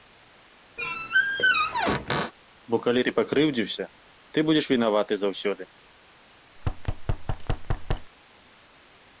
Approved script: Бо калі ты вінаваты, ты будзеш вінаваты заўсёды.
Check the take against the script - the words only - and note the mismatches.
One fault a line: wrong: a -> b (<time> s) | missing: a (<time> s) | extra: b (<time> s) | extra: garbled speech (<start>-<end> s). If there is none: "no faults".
wrong: вінаваты -> пакрыўдзіўся (3.2 s)